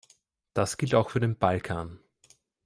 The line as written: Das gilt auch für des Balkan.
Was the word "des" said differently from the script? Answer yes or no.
yes